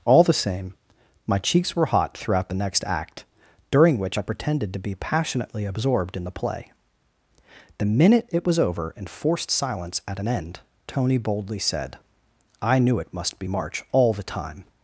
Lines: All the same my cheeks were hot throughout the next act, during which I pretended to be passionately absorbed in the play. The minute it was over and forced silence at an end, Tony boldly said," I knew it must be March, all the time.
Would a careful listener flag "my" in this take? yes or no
no